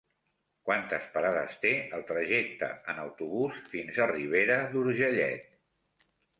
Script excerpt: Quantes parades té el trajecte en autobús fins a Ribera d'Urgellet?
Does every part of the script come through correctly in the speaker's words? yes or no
yes